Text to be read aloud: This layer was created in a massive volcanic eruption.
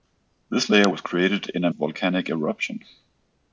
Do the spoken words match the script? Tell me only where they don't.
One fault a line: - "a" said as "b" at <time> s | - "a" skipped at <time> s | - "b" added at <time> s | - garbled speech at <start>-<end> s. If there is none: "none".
- "massive" skipped at 1.7 s